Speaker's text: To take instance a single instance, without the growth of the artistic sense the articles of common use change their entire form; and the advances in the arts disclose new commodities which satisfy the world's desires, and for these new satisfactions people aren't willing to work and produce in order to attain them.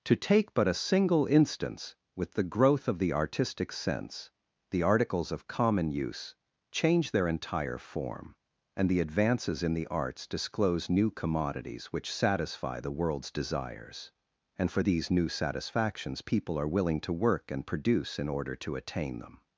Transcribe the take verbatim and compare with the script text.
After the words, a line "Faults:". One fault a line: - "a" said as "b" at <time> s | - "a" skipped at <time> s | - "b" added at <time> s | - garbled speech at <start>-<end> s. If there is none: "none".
To take but a single instance, with the growth of the artistic sense the articles of common use change their entire form; and the advances in the arts disclose new commodities which satisfy the world's desires, and for these new satisfactions people are willing to work and produce in order to attain them.
Faults:
- "instance" said as "but" at 0.6 s
- "without" said as "with" at 2.1 s
- "aren't" said as "are" at 16.6 s